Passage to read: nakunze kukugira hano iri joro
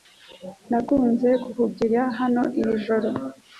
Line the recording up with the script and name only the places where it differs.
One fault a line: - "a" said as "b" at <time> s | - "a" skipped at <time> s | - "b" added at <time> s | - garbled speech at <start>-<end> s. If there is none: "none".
none